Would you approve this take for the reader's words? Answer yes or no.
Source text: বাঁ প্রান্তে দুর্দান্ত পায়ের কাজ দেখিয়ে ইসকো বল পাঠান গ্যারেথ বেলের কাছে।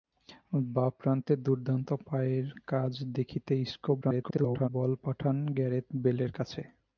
no